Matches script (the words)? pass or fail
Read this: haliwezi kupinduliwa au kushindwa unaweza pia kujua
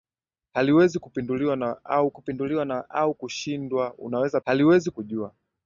fail